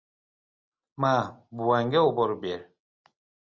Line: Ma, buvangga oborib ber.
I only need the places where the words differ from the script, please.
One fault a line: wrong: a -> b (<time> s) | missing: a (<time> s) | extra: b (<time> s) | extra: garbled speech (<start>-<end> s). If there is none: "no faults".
no faults